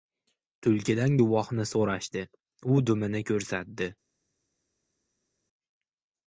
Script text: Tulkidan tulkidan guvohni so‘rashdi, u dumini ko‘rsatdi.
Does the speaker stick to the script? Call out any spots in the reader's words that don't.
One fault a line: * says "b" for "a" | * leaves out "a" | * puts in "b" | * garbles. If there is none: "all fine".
* leaves out "tulkidan"